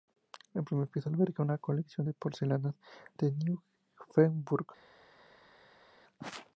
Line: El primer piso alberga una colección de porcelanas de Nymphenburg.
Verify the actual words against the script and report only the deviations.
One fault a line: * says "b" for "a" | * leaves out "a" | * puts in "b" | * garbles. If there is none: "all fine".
all fine